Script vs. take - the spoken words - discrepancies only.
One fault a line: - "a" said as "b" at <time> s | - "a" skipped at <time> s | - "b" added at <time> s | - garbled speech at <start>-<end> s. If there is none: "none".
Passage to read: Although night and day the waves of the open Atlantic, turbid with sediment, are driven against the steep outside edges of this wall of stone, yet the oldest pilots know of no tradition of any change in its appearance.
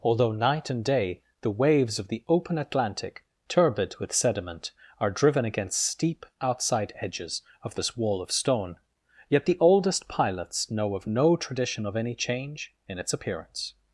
- "the" skipped at 5.9 s